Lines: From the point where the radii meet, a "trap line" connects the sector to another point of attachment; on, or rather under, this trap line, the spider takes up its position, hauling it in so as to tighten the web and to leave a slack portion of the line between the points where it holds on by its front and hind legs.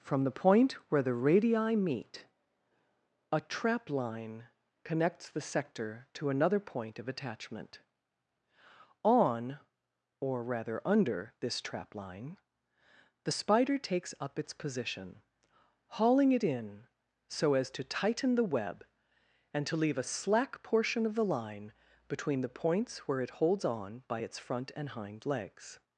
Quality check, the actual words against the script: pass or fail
pass